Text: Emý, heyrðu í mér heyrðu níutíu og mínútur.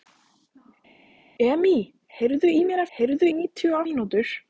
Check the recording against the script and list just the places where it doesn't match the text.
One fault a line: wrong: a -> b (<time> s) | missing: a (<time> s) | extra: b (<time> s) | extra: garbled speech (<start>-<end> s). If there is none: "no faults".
no faults